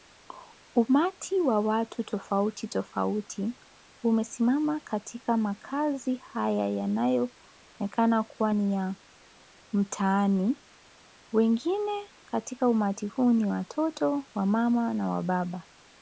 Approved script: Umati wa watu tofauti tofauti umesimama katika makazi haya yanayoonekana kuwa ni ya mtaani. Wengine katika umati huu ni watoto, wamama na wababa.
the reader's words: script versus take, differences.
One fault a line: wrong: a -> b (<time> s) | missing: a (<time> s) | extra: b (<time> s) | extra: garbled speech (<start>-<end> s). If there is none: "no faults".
no faults